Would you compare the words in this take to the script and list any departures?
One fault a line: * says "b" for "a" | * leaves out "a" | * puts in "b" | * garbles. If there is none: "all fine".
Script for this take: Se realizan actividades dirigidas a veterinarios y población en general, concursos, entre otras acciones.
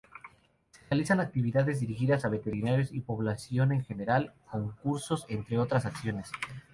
all fine